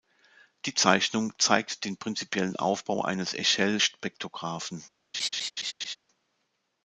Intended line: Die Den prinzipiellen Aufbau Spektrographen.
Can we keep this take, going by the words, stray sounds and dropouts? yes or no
no